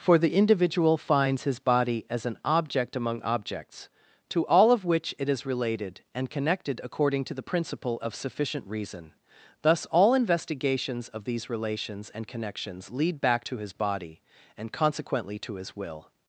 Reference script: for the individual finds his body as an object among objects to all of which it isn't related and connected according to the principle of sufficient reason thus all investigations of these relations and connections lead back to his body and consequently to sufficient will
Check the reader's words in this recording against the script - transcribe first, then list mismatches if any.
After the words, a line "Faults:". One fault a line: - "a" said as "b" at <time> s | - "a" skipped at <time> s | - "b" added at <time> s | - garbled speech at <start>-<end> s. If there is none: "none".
for the individual finds his body as an object among objects to all of which it is related and connected according to the principle of sufficient reason thus all investigations of these relations and connections lead back to his body and consequently to his will
Faults:
- "isn't" said as "is" at 5.3 s
- "sufficient" said as "his" at 15.5 s